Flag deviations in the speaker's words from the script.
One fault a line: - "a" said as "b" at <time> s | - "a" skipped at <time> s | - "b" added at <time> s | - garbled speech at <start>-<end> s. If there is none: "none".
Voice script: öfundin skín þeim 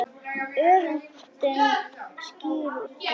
none